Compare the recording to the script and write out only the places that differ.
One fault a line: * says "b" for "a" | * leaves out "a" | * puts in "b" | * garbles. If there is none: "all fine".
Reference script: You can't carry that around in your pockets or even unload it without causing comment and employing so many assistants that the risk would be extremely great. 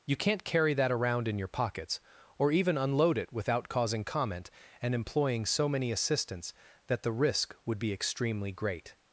all fine